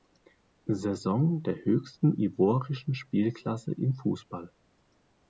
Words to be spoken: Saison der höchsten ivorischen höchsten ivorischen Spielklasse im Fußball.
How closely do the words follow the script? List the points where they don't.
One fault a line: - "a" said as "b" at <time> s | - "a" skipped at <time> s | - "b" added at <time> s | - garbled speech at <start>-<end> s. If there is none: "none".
- "höchsten ivorischen" skipped at 2.9 s